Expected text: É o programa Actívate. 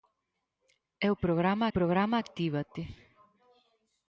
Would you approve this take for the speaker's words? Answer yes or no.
no